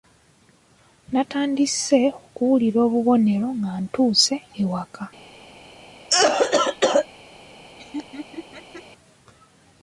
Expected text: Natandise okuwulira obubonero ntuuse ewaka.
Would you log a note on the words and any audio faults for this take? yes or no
yes